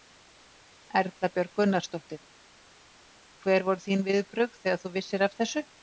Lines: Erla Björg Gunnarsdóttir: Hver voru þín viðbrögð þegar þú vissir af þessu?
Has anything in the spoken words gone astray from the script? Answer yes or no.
no